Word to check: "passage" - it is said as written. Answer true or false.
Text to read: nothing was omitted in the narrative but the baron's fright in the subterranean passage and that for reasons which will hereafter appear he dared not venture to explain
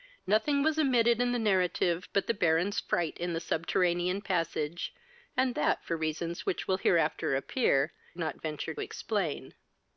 true